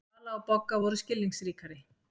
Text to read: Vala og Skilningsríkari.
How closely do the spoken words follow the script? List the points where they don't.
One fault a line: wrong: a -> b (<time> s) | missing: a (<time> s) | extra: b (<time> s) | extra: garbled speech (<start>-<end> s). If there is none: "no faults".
extra: Bogga voru (0.5 s)